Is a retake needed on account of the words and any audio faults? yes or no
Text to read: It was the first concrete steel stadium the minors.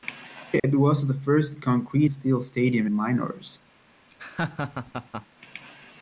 yes